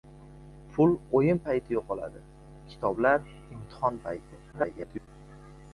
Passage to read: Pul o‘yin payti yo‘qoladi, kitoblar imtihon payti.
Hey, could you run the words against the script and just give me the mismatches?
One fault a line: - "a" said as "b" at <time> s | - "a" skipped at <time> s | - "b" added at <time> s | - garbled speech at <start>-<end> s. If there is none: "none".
- garbled speech at 4.5-5.1 s